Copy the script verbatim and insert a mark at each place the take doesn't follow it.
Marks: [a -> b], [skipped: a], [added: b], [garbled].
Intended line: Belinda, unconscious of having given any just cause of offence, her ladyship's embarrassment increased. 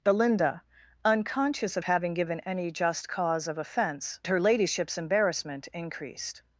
Belinda, unconscious of having given any just cause of offence, her ladyship's embarrassment increased.